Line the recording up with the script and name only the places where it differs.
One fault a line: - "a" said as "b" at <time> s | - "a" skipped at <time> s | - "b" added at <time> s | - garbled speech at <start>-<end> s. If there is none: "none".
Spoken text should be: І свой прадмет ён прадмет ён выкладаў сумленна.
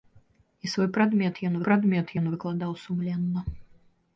none